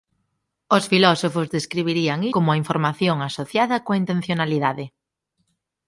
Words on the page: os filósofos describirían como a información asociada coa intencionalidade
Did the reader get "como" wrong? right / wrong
right